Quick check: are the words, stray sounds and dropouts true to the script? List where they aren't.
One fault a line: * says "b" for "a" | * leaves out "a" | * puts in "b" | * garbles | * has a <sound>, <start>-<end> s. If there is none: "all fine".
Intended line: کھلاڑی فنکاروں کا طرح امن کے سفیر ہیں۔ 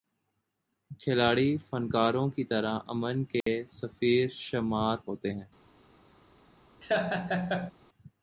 * says "کی" for "کا"
* has a dropout, 3.4-3.5 s
* puts in "شمار ہوتے"
* has a laugh, 6.8-7.7 s